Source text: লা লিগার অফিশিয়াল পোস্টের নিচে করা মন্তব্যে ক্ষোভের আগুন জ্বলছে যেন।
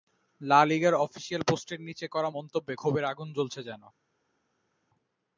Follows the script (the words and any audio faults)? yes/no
yes